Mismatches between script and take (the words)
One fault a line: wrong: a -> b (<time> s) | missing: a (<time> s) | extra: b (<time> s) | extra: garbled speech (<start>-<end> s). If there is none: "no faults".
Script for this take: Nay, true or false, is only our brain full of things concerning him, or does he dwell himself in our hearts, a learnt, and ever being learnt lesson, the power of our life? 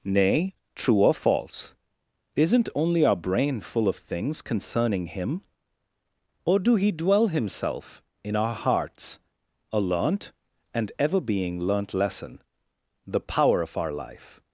wrong: is -> isn't (2.4 s)
wrong: does -> do (6.6 s)